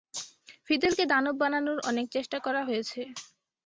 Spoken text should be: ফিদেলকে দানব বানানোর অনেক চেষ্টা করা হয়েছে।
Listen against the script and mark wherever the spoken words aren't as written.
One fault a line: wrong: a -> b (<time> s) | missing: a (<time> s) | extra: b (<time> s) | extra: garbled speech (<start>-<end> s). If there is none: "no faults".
no faults